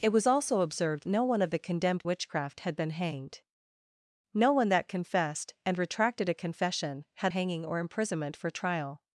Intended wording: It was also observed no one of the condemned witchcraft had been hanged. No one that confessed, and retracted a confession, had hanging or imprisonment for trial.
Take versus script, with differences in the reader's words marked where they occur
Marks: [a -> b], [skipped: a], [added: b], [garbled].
It was also observed no one of the condemned witchcraft had been hanged. No one that confessed, and retracted a confession, had hanging or imprisonment for trial.